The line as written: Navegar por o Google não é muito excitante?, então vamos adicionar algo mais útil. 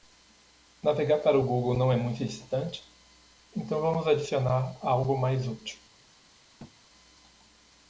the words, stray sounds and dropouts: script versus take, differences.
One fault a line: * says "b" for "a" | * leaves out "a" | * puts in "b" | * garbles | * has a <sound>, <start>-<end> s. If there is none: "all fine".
* says "para" for "por"
* has a thud, 6.6-6.8 s